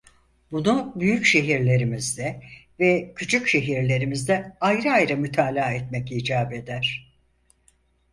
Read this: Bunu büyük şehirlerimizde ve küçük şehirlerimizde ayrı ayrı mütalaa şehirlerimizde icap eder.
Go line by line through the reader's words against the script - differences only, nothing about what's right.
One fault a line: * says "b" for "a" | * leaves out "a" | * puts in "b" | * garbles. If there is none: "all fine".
* says "etmek" for "şehirlerimizde"